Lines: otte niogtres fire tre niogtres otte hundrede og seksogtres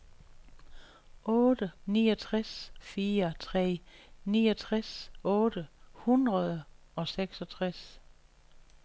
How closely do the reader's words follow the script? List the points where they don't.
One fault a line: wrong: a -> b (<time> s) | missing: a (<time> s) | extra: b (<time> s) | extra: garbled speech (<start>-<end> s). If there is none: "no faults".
no faults